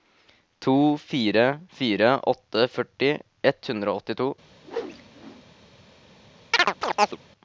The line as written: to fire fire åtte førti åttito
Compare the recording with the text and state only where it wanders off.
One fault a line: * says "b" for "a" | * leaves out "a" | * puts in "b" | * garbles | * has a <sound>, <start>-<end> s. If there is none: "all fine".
* puts in "ett hundre og"
* has a whoosh, 4.6-5.4 s
* has a chirp, 6.5-7.2 s